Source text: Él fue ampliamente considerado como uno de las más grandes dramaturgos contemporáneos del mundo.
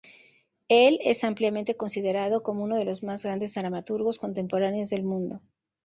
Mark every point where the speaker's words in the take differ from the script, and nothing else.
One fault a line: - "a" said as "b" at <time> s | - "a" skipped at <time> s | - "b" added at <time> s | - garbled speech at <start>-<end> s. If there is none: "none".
- "fue" said as "es" at 1.0 s
- "las" said as "los" at 2.9 s